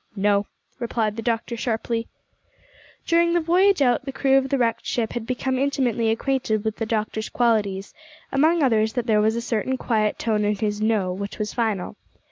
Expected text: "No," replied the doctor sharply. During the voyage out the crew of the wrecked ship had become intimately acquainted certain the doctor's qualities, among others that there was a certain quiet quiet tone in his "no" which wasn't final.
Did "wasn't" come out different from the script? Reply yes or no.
yes